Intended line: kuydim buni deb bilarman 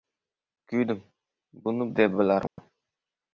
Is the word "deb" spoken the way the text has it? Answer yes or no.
yes